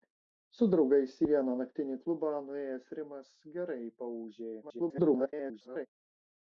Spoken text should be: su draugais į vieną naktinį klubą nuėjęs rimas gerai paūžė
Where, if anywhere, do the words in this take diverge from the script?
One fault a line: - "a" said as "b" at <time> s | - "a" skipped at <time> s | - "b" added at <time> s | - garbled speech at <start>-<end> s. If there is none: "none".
- garbled speech at 4.6-5.9 s